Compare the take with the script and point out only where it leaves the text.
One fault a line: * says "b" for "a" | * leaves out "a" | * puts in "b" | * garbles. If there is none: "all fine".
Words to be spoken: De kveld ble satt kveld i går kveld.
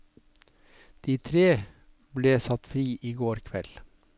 * says "tre" for "kveld"
* says "fri" for "kveld"